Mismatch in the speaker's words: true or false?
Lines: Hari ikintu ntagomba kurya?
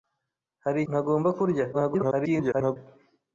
true